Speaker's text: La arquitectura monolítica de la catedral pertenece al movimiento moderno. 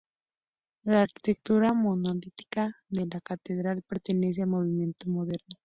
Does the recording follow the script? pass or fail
pass